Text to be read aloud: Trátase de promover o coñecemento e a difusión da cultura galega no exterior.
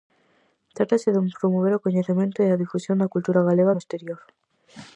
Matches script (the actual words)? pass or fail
pass